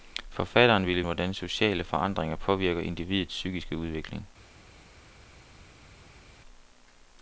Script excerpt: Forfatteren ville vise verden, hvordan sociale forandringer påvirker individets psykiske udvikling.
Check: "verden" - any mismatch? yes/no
yes